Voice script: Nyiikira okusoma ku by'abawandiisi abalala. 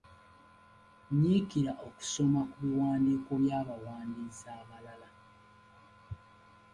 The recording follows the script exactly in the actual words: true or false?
false